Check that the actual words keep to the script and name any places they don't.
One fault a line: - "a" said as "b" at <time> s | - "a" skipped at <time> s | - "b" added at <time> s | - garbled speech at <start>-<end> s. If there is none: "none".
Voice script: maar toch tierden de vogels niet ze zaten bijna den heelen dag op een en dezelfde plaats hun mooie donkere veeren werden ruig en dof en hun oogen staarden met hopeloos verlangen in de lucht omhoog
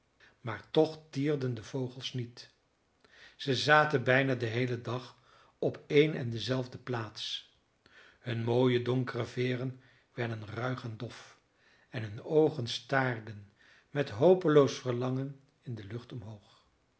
none